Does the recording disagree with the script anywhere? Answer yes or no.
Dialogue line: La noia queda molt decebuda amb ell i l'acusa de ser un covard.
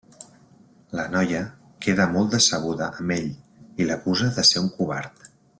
no